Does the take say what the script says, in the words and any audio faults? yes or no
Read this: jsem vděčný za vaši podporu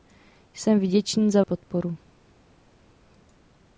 no